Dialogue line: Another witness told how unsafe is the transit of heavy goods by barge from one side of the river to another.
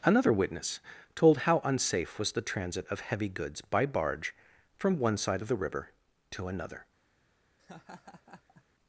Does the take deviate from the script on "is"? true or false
true